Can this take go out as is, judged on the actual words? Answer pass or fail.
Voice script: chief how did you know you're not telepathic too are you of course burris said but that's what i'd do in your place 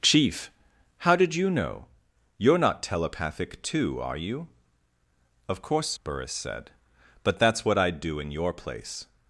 pass